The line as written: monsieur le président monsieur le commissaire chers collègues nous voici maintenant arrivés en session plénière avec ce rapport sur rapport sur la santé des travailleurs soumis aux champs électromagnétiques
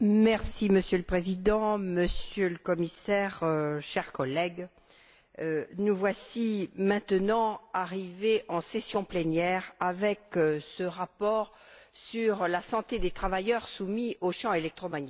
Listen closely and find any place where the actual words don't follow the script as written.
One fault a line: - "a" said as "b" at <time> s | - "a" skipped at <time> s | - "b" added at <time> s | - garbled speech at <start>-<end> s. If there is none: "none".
- "rapport sur" skipped at 12.5 s